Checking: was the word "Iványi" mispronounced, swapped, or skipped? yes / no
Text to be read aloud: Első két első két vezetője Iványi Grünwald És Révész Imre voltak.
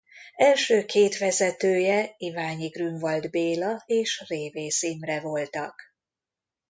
no